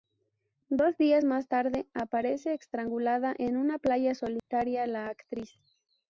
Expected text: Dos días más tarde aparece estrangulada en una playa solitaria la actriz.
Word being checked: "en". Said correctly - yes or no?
yes